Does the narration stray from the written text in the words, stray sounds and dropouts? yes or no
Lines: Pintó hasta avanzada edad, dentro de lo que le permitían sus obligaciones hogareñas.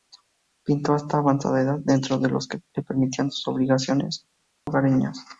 yes